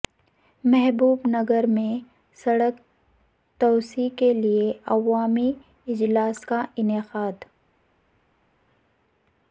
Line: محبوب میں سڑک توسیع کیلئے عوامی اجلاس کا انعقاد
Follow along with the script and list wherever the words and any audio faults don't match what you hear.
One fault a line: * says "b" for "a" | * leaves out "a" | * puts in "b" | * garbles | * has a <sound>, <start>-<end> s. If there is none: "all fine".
* puts in "نگر"